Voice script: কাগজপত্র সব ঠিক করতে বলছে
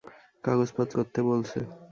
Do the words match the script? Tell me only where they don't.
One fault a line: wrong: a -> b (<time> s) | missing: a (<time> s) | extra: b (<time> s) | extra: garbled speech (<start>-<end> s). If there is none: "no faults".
missing: সব ঠিক (0.9 s)